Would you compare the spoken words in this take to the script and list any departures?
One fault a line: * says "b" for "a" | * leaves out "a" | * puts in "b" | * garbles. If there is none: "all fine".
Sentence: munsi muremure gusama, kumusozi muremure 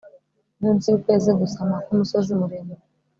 * says "yukwezi" for "muremure"